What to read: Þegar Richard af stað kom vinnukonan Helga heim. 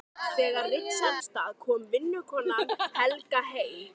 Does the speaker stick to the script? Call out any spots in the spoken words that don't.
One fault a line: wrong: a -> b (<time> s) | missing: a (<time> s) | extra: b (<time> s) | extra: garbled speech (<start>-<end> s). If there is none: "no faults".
no faults